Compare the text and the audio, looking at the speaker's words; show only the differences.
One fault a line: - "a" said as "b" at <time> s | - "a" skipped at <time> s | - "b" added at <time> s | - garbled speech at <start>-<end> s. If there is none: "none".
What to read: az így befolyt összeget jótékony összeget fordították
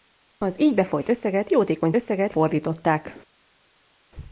none